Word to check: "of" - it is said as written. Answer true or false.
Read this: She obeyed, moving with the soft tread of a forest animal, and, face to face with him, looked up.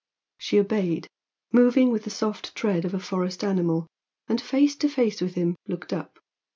true